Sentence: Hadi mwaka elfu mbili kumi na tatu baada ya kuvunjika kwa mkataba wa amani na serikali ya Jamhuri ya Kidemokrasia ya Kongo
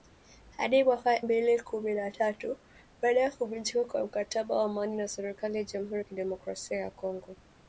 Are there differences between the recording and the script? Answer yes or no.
yes